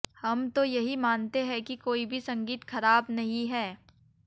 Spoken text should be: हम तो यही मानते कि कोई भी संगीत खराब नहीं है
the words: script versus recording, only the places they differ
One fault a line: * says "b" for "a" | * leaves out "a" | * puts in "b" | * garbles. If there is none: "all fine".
* puts in "हैं"